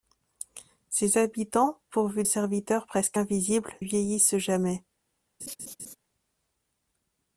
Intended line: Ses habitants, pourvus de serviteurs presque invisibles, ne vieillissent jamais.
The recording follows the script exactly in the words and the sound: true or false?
false